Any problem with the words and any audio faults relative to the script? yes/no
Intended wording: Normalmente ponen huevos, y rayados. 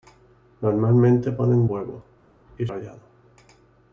no